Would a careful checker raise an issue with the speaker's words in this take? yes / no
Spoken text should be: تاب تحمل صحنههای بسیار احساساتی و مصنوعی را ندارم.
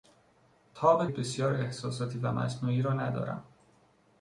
yes